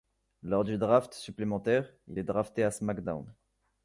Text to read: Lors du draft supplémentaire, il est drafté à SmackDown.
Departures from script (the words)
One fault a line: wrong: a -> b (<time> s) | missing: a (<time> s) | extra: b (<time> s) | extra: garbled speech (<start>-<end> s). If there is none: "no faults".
no faults